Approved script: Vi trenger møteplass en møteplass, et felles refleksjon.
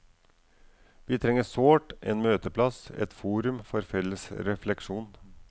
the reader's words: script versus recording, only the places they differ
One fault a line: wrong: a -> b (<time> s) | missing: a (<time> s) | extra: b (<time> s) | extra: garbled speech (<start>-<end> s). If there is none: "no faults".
wrong: møteplass -> sårt (1.4 s)
extra: forum for (3.1 s)